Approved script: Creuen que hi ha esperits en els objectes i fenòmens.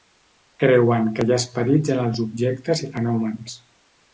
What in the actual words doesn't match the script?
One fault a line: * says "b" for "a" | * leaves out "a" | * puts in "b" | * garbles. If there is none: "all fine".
all fine